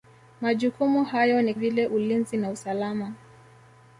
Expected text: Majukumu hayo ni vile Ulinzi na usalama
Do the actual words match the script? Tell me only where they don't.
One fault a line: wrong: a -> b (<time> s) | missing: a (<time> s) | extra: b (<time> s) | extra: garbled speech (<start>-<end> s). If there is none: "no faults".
no faults